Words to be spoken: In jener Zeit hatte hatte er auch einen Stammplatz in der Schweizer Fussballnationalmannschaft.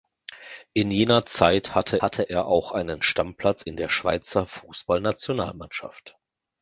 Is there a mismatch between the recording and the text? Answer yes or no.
no